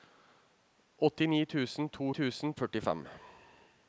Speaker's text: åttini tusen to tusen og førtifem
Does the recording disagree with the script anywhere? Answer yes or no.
no